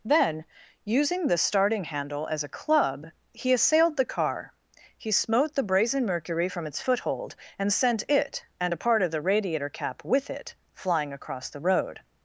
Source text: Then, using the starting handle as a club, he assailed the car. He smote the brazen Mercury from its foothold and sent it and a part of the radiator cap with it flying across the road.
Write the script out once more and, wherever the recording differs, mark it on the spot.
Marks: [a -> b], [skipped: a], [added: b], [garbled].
Then, using the starting handle as a club, he assailed the car. He smote the brazen Mercury from its foothold and sent it and a part of the radiator cap with it flying across the road.